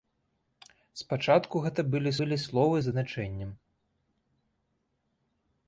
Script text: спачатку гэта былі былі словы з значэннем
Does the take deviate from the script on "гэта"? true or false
false